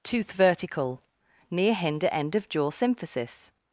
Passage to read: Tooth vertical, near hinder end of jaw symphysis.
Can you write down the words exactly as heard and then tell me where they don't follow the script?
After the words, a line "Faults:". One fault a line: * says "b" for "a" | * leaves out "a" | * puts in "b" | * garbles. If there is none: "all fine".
Tooth vertical, near hinder end of jaw symphysis.
Faults:
all fine